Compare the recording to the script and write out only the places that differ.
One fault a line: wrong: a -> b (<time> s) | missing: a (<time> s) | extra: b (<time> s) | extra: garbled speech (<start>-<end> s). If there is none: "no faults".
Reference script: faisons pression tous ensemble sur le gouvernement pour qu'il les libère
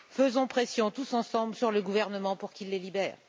no faults